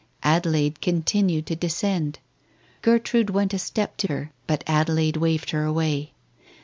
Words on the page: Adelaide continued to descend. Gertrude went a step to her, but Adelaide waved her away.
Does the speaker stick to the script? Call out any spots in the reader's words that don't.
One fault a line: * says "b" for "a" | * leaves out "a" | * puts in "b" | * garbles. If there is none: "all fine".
all fine